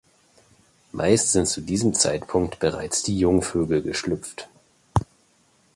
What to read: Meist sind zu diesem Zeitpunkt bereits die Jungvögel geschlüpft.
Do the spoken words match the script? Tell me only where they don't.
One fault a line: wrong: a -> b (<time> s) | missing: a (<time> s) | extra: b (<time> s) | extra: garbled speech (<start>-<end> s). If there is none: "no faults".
no faults